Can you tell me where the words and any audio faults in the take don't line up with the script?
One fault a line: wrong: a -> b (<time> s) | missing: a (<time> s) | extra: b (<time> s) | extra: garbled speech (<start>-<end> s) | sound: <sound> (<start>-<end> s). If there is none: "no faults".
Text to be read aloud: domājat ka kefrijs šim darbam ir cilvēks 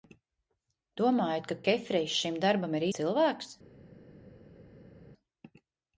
no faults